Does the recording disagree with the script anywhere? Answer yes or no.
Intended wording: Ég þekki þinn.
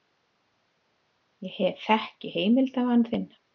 yes